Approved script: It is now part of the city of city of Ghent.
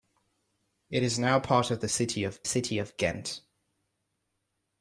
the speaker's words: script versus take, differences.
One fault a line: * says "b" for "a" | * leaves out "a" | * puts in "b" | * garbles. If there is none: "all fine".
all fine